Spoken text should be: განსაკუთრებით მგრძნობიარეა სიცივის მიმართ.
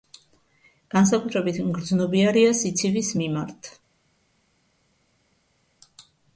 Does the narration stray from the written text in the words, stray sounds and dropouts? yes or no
no